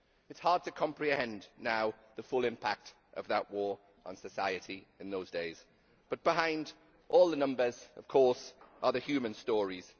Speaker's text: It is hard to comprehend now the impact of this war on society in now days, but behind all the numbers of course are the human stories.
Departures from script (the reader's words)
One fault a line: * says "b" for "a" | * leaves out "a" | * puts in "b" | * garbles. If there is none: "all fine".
* puts in "full"
* says "that" for "this"
* says "those" for "now"